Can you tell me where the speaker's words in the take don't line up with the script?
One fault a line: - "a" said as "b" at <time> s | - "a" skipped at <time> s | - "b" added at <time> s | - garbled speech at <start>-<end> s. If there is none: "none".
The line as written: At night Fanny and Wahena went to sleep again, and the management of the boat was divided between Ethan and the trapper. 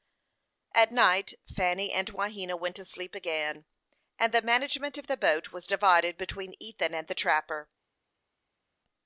none